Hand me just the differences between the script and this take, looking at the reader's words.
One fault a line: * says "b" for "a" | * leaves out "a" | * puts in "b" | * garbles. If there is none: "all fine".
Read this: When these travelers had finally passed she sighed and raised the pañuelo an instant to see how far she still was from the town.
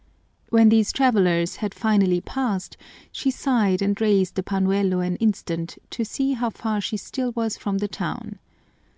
all fine